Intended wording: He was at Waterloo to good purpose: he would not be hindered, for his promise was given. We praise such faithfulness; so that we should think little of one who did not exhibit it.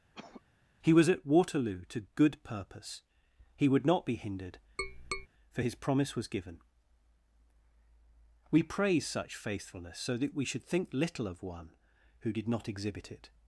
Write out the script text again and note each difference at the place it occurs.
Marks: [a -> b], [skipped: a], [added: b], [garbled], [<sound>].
[cough] He was at Waterloo to good purpose: he would not be hindered, [tap] for his promise was given. We praise such faithfulness; so that we should think little of one who did not exhibit it.